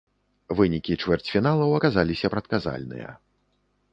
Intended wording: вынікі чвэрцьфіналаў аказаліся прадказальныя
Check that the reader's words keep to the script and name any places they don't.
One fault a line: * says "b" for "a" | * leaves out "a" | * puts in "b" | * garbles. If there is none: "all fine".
all fine